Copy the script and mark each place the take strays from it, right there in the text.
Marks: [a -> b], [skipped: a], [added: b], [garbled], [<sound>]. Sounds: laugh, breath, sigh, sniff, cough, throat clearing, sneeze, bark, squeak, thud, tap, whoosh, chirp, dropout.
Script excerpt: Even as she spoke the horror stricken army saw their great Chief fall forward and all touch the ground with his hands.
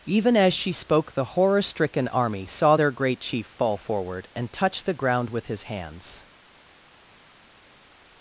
Even as she spoke the horror stricken army saw their great Chief fall forward and [skipped: all] touch the ground with his hands.